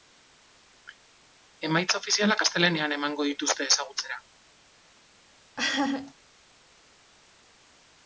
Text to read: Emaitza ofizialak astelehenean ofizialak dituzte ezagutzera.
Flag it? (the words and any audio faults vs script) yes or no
yes